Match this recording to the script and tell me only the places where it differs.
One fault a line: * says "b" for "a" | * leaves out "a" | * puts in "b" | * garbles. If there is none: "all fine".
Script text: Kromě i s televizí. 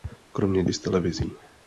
all fine